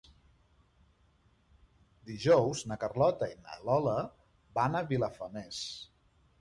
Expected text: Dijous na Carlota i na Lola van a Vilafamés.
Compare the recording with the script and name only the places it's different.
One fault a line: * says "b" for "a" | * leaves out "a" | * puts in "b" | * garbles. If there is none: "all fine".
all fine